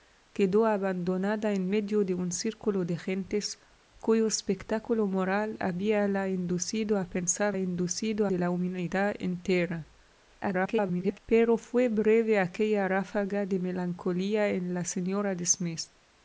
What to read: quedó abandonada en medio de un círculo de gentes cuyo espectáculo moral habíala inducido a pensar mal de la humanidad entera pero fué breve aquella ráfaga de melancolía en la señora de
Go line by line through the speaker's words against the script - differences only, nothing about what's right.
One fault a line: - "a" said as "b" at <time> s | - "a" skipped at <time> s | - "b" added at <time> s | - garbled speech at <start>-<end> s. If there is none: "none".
- "mal" said as "inducido" at 7.6 s
- garbled speech at 10.4-11.2 s